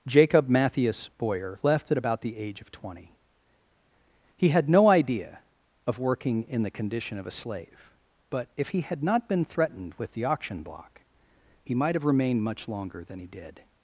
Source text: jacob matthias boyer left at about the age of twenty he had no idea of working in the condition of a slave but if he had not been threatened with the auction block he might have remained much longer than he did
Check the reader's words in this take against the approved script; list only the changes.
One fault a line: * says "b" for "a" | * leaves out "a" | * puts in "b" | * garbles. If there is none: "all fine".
all fine